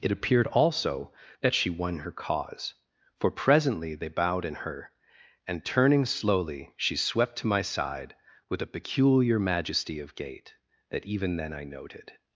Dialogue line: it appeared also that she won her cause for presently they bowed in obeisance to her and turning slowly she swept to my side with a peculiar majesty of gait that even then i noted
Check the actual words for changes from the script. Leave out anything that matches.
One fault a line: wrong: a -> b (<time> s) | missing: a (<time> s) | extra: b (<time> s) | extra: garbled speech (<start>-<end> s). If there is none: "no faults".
missing: obeisance to (4.5 s)